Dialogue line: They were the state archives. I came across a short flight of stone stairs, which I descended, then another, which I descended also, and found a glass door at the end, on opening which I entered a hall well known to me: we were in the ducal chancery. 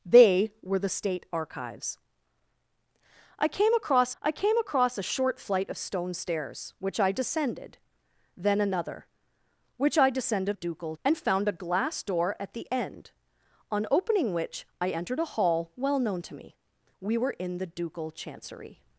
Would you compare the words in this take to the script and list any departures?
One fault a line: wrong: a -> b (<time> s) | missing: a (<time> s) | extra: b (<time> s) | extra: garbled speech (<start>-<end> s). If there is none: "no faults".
extra: I came across (4.2 s)
wrong: also -> ducal (10.5 s)